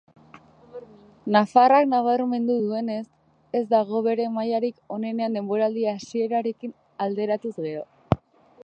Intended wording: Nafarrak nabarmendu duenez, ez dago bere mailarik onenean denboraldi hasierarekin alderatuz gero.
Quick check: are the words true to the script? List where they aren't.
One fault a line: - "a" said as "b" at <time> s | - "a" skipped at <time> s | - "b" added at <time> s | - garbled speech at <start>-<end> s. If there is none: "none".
none